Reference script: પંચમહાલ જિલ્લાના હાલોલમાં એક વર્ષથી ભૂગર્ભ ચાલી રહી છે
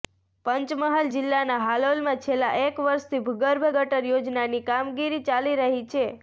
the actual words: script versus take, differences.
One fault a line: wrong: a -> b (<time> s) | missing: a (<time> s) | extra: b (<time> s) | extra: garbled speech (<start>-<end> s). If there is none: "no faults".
extra: છેલ્લા (2.2 s)
extra: ગટર યોજનાની કામગીરી (3.7 s)